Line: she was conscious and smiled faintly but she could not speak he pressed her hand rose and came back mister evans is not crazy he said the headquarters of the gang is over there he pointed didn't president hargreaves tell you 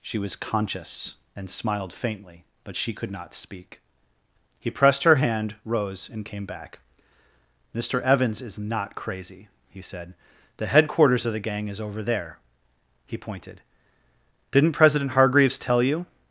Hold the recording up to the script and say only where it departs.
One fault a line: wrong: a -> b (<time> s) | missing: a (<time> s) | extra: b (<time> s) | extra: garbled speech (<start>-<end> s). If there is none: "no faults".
no faults